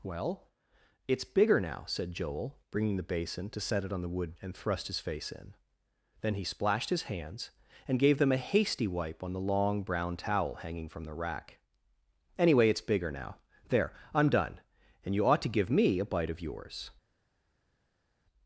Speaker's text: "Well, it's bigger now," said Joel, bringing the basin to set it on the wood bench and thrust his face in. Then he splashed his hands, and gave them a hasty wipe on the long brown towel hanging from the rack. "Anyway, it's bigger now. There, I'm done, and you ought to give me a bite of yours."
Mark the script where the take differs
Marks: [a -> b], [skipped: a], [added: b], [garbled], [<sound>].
"Well, it's bigger now," said Joel, bringing the basin to set it on the wood [skipped: bench] and thrust his face in. Then he splashed his hands, and gave them a hasty wipe on the long brown towel hanging from the rack. "Anyway, it's bigger now. There, I'm done, and you ought to give me a bite of yours."